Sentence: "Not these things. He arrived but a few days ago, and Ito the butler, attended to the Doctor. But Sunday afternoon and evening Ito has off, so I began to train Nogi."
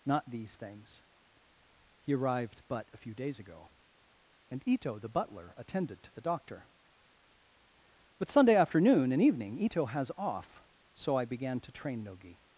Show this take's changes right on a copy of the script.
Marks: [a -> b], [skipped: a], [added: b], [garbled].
"Not these things. He arrived but a few days ago, and Ito the butler, attended to the Doctor. But Sunday afternoon and evening Ito has off, so I began to train Nogi."